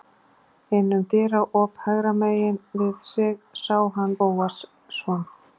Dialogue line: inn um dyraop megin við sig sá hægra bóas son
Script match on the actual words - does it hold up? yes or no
no